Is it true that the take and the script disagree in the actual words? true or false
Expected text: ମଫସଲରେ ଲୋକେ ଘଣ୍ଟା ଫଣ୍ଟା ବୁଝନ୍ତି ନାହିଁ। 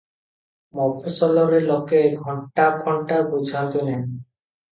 false